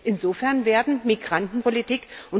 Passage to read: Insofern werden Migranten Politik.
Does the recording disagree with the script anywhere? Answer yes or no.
no